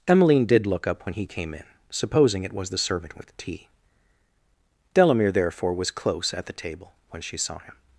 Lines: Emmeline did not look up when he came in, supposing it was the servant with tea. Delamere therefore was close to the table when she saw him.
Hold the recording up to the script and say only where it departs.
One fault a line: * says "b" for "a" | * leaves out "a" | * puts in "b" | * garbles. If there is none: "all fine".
* leaves out "not"
* says "at" for "to"